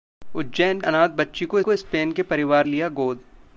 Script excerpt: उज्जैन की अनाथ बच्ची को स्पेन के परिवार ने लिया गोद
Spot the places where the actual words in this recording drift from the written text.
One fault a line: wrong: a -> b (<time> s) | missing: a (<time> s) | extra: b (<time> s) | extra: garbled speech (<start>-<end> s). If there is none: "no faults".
missing: की (0.8 s)
extra: को (1.6 s)
missing: ने (2.7 s)